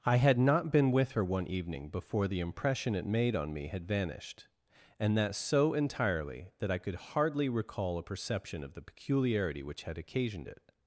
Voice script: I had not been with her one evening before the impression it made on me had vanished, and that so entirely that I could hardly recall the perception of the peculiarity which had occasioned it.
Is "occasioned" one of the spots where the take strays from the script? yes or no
no